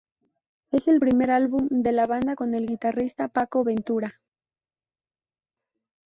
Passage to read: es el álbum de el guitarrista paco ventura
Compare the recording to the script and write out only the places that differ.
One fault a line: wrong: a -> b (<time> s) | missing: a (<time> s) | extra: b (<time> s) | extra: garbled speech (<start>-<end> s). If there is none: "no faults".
extra: primer (1.0 s)
extra: la banda con (1.9 s)